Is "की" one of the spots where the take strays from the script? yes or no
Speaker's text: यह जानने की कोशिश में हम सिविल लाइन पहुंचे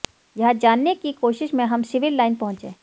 no